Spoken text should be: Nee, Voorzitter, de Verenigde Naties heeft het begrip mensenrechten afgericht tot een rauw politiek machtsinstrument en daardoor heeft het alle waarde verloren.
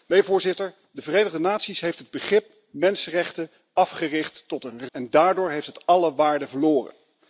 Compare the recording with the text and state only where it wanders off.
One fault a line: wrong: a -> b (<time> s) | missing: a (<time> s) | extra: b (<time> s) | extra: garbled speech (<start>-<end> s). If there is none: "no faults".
missing: rauw politiek machtsinstrument (4.9 s)